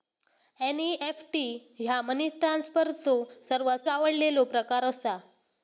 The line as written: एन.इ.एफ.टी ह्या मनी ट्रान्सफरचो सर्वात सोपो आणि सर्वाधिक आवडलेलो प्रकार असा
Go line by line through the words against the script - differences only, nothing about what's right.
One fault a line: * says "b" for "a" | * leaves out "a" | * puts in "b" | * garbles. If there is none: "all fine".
* leaves out "सोपो आणि सर्वाधिक"